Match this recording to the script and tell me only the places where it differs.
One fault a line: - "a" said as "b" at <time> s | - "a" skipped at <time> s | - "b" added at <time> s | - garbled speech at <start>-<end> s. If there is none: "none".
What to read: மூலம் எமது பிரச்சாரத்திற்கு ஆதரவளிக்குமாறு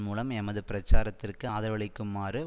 none